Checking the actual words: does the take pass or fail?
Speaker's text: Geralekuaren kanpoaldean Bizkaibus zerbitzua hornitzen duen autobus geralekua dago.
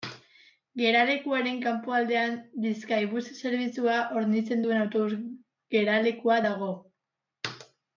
pass